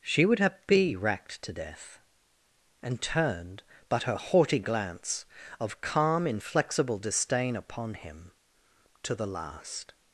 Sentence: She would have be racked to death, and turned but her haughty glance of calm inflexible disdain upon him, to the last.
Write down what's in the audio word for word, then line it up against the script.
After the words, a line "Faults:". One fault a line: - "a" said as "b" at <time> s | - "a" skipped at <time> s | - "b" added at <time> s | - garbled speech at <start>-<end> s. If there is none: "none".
She would have be racked to death, and turned but her haughty glance of calm inflexible disdain upon him, to the last.
Faults:
none